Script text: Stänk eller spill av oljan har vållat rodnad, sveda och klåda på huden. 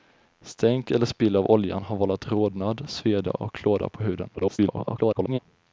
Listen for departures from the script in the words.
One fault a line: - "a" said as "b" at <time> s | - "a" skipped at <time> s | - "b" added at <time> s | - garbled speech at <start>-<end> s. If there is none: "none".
- garbled speech at 4.4-5.4 s